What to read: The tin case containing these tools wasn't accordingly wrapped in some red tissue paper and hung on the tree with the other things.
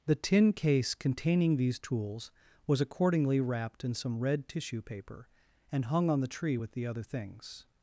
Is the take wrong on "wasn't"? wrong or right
wrong